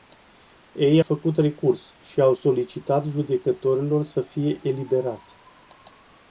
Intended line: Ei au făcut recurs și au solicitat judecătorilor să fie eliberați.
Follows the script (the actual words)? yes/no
no